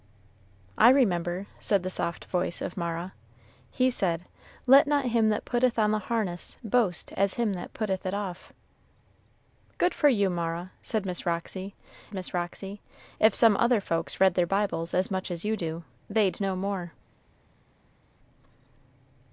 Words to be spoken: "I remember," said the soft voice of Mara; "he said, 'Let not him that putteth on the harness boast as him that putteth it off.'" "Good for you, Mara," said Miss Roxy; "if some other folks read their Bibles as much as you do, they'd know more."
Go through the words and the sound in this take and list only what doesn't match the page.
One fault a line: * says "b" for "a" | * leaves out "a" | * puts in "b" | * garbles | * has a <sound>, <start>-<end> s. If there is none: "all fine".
* puts in "Miss Roxy"